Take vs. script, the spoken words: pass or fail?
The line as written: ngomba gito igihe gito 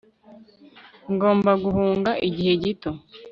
fail